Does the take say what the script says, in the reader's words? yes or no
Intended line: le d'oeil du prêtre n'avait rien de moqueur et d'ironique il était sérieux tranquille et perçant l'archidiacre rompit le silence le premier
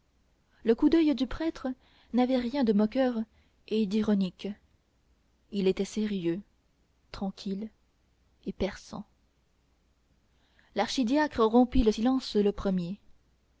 no